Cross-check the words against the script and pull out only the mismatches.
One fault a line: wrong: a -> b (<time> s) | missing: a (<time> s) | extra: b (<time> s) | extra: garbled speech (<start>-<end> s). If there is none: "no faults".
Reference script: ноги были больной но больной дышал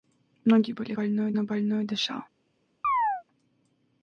no faults